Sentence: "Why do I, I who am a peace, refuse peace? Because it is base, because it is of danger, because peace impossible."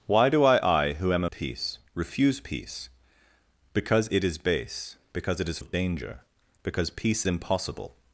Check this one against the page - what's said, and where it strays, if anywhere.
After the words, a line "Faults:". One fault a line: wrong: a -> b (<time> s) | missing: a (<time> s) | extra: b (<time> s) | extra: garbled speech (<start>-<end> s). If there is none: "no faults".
"Why do I, I who am a peace, refuse peace? Because it is base, because it is of danger, because peace impossible."
Faults:
no faults